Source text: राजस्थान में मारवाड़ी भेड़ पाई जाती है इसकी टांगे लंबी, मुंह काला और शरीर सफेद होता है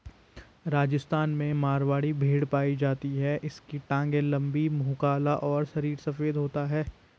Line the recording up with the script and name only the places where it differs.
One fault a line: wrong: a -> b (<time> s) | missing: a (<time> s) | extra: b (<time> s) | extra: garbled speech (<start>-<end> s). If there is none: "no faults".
no faults